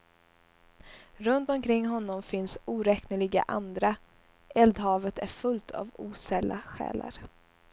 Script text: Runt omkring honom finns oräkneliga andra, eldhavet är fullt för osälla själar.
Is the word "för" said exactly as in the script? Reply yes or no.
no